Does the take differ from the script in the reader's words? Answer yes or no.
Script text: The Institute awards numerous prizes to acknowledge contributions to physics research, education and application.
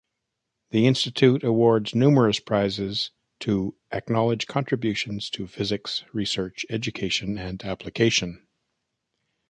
no